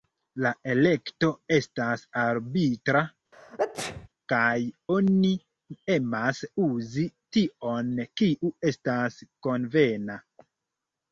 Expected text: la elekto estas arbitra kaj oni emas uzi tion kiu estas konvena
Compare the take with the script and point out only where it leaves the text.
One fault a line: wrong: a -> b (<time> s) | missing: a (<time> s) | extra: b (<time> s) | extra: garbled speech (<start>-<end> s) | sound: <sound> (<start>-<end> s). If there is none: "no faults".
sound: sneeze (3.3-4.1 s)